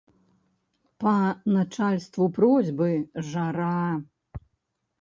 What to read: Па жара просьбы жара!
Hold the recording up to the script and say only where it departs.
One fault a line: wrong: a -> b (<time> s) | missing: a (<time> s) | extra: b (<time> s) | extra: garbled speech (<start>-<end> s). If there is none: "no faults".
wrong: жара -> начальству (1.6 s)